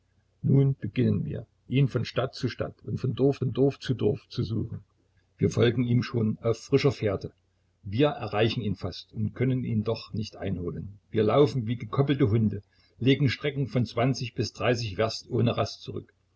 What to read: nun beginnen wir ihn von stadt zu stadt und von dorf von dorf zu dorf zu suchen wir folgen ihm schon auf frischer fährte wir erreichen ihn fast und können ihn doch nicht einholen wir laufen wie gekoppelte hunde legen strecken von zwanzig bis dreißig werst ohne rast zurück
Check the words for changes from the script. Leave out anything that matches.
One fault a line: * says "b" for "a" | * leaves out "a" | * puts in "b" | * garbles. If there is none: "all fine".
all fine